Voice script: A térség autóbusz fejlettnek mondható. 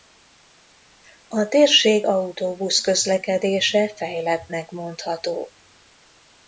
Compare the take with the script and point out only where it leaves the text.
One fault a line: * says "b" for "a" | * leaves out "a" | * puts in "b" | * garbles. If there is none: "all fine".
* puts in "közlekedése"